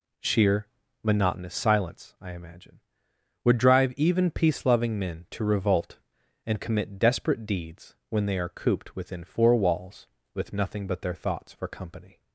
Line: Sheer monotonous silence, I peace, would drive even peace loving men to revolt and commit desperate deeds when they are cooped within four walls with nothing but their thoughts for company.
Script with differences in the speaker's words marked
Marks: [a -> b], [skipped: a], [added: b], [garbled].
Sheer monotonous silence, I [peace, -> imagine] would drive even peace loving men to revolt and commit desperate deeds when they are cooped within four walls with nothing but their thoughts for company.